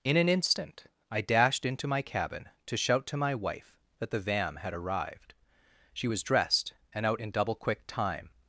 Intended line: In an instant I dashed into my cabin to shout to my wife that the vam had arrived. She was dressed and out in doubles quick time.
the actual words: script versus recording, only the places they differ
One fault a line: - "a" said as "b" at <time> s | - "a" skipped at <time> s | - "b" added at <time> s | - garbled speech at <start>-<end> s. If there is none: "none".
- "doubles" said as "double" at 7.3 s